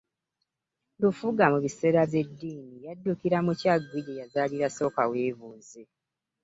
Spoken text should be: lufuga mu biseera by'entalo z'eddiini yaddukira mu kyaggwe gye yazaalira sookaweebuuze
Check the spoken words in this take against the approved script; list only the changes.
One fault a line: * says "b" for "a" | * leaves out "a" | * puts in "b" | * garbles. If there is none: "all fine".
* leaves out "by'entalo"